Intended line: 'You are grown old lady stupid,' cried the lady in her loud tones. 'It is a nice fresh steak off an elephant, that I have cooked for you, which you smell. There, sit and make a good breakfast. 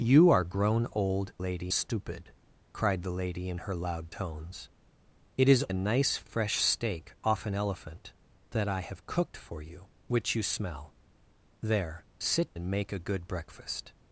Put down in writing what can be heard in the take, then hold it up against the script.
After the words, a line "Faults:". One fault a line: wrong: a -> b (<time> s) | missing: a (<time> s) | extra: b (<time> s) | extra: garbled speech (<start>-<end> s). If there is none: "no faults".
'You are grown old lady stupid,' cried the lady in her loud tones. 'It is a nice fresh steak off an elephant, that I have cooked for you, which you smell. There, sit and make a good breakfast.
Faults:
no faults